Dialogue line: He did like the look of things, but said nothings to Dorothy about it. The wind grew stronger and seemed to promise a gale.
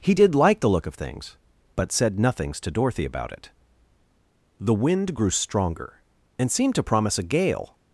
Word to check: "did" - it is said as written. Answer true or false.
true